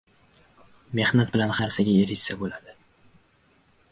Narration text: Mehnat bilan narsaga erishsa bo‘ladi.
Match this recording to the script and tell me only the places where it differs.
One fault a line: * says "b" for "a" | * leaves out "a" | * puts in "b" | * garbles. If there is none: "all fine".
all fine